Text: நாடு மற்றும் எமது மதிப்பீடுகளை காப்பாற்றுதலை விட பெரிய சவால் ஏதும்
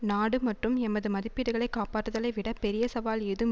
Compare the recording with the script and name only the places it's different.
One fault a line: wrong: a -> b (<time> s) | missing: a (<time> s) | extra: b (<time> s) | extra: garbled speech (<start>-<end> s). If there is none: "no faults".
no faults